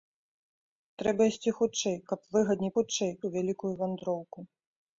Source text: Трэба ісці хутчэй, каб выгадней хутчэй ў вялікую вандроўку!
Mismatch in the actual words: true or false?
false